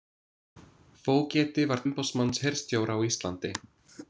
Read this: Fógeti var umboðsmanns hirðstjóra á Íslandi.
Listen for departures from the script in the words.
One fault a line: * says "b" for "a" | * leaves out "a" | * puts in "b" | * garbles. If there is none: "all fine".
all fine